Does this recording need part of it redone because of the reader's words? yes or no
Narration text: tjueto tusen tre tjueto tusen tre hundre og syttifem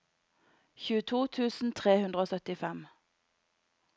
yes